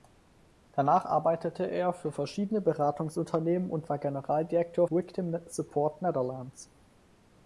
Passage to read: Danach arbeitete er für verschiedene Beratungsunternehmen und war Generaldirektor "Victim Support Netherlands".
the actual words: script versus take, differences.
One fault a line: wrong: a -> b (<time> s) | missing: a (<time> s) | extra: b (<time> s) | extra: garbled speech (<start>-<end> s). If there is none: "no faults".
no faults